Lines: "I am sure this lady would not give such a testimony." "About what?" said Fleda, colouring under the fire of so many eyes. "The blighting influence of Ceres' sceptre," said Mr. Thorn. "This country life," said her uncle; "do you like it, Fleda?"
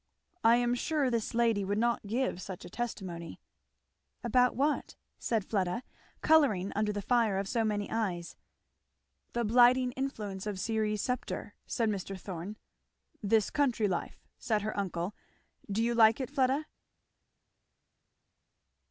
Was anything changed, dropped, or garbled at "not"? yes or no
no